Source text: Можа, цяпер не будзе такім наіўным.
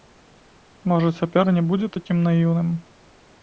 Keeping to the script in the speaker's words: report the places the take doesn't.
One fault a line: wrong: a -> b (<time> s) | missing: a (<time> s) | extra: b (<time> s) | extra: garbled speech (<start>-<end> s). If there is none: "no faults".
no faults